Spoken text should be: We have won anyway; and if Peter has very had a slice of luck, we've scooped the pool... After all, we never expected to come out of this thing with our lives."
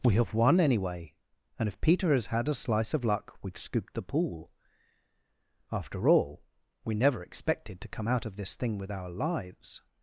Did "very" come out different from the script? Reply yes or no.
yes